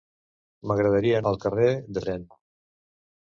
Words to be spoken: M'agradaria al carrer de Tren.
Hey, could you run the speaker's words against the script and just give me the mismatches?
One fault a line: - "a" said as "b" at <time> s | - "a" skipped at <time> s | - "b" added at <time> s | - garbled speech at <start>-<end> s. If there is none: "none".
none